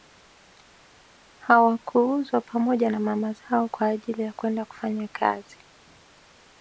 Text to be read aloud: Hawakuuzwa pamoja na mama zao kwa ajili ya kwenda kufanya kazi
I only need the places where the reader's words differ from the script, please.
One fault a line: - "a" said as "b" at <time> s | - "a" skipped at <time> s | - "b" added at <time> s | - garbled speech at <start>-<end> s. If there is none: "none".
none